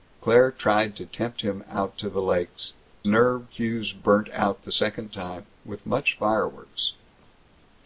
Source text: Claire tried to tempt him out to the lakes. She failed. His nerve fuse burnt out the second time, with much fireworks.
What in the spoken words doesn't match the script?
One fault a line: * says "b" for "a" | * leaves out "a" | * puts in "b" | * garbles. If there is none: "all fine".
* leaves out "She failed His"